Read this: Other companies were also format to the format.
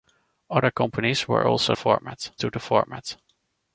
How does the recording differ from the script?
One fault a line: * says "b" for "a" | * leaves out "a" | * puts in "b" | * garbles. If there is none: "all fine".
all fine